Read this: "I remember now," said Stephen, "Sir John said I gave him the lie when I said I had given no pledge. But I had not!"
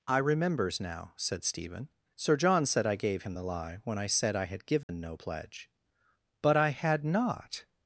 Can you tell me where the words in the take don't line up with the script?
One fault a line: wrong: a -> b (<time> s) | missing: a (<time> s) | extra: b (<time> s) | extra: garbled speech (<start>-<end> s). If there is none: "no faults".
wrong: remember -> remembers (0.2 s)